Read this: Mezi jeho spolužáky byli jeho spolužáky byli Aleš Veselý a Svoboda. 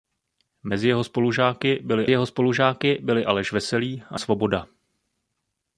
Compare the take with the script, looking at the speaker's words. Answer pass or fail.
pass